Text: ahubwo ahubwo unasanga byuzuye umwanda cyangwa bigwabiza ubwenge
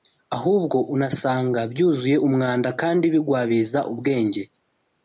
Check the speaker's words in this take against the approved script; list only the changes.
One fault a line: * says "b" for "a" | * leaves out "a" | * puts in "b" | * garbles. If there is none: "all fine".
* leaves out "ahubwo"
* says "kandi" for "cyangwa"